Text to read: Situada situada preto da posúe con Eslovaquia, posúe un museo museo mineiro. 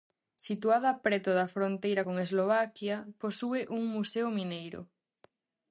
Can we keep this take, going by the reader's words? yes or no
no